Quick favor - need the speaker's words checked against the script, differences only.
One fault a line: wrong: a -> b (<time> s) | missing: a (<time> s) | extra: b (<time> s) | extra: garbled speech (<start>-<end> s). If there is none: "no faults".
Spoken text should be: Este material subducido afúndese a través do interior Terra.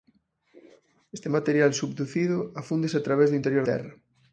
no faults